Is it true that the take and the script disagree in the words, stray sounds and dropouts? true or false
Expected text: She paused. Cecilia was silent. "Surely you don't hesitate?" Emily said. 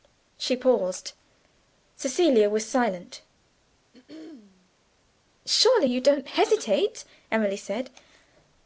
true